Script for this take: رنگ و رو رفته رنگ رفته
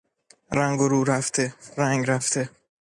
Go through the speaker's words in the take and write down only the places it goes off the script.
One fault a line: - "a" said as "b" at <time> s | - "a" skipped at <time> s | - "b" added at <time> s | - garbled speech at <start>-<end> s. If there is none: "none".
none